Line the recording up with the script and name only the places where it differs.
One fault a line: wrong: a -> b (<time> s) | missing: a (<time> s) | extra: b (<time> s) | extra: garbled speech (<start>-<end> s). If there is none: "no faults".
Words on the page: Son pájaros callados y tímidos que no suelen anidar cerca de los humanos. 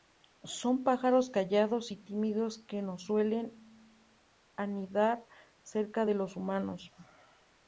no faults